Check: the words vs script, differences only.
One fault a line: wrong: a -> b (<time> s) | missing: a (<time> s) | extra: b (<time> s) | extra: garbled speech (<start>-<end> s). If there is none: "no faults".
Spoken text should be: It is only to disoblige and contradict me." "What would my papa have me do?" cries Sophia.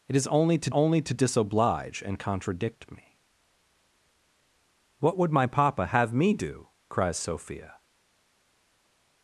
extra: only to (0.7 s)